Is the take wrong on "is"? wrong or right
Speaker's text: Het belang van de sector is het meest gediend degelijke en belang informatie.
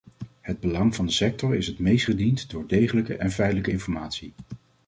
right